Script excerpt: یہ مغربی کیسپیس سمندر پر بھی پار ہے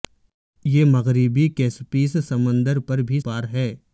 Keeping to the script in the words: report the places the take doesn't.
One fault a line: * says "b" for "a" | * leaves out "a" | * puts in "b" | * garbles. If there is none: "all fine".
all fine